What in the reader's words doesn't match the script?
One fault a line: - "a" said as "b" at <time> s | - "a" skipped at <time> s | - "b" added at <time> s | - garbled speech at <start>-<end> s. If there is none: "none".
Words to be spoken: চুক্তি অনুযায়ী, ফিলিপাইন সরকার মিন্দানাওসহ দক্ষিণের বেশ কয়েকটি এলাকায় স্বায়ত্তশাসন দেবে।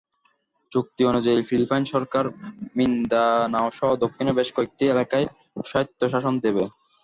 none